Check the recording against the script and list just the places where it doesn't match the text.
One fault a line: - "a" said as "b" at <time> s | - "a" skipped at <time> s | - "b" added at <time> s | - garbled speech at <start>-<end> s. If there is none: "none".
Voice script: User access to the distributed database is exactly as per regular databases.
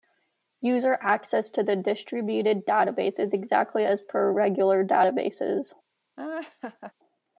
none